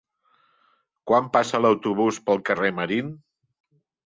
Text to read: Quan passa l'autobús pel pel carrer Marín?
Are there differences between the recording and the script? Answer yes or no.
yes